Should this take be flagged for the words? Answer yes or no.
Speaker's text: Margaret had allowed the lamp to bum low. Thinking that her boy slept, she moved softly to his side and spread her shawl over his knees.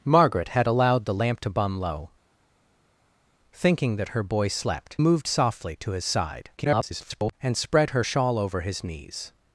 yes